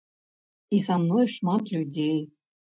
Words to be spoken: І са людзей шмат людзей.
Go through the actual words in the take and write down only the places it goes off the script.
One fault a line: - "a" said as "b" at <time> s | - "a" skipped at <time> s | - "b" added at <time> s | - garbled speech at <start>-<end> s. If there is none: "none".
- "людзей" said as "мной" at 1.0 s